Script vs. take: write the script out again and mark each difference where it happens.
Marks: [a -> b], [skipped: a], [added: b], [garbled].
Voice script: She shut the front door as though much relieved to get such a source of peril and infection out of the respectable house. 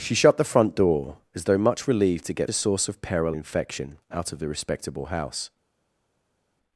She shut the front door as though much relieved to get [skipped: such] a source of peril [skipped: and] infection out of the respectable house.